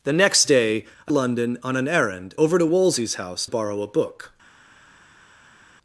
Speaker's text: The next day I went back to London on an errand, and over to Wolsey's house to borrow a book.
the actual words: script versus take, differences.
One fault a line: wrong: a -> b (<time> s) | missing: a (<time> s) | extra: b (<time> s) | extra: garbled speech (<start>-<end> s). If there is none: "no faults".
missing: went back to (1.1 s)
missing: and (2.3 s)
missing: to (3.5 s)